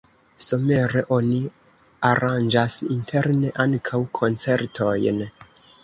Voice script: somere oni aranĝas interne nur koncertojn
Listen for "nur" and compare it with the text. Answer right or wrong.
wrong